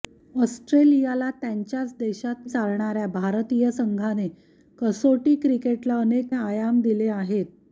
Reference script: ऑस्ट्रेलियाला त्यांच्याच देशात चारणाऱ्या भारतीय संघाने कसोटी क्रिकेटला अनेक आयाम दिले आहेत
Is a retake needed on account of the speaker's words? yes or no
no